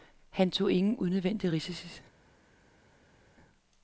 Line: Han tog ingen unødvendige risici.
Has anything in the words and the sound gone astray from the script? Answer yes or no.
no